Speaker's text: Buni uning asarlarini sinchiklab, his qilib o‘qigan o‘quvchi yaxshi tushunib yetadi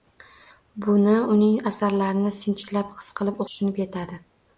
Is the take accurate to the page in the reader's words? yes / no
no